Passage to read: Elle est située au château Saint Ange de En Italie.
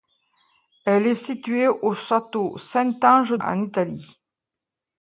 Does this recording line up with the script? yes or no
yes